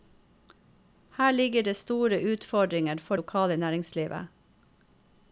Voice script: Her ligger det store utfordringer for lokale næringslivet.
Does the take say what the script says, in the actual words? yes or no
yes